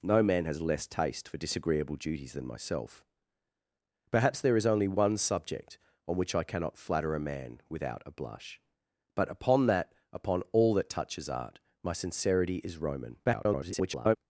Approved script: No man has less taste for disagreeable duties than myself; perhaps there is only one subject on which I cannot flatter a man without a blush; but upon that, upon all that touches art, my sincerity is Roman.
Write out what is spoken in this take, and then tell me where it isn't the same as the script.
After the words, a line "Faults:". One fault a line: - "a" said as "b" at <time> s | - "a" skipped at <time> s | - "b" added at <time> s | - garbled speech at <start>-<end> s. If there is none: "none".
No man has less taste for disagreeable duties than myself; perhaps there is only one subject on which I cannot flatter a man without a blush; but upon that, upon all that touches art, my sincerity is Roman. [garbled]
Faults:
- garbled speech at 13.2-14.2 s